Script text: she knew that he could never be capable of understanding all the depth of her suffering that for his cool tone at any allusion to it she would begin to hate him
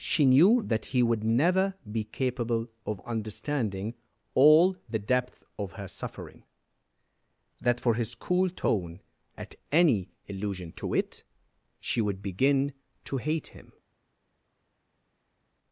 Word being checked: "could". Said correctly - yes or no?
no